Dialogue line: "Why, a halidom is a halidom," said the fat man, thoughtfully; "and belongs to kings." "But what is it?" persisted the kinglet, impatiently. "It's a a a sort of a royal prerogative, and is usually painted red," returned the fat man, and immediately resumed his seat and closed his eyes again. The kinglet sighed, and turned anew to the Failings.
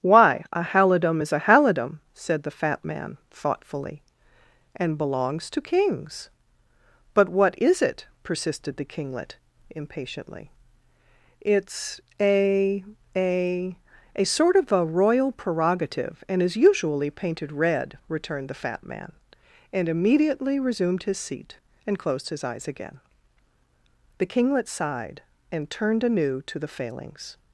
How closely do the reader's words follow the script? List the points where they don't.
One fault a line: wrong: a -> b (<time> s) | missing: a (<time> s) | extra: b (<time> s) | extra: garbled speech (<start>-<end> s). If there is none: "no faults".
no faults